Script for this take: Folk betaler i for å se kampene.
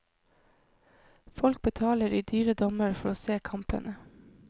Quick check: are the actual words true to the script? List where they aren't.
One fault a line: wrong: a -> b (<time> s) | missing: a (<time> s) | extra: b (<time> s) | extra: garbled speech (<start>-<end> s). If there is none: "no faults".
extra: dyre dommer (2.2 s)